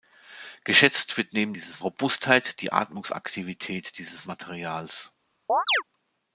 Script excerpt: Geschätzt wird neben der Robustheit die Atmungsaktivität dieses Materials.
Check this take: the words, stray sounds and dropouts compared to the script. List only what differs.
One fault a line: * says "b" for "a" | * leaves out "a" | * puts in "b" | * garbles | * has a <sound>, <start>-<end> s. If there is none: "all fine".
* says "dieses" for "der"
* has a chirp, 5.5-5.8 s